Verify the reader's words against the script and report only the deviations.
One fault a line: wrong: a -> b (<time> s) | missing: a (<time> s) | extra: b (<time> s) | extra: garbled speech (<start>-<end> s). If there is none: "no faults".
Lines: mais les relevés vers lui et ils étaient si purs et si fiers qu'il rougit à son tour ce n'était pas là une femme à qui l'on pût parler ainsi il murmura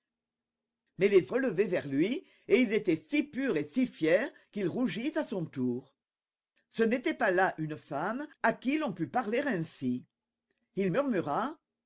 no faults